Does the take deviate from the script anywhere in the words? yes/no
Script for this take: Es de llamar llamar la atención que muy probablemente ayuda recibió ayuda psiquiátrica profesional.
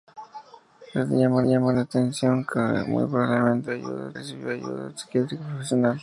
no